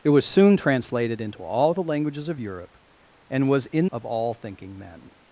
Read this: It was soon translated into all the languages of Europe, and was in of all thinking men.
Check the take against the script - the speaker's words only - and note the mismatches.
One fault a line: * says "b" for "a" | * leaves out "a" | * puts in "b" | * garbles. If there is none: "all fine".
all fine